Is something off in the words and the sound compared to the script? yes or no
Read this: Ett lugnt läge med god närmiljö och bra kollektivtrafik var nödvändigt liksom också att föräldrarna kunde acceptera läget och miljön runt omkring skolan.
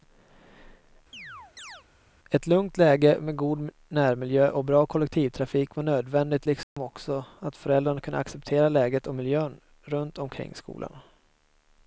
yes